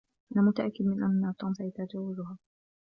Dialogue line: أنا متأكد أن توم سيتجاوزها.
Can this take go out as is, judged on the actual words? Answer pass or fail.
fail